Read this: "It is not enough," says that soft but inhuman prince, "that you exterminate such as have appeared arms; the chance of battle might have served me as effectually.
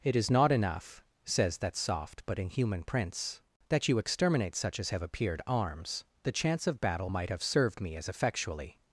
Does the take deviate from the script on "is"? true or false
false